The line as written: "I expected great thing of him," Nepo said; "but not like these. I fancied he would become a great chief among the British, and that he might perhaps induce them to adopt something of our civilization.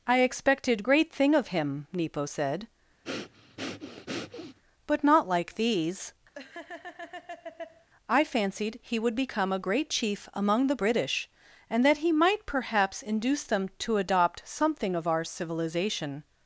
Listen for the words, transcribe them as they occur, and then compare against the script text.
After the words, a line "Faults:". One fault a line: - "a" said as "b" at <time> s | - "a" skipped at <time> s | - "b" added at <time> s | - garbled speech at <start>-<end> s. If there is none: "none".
"I expected great thing of him," Nepo said; "but not like these. I fancied he would become a great chief among the British, and that he might perhaps induce them to adopt something of our civilization.
Faults:
none